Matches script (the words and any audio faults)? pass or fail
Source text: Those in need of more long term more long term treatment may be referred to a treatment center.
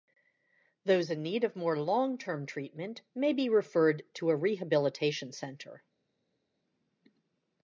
fail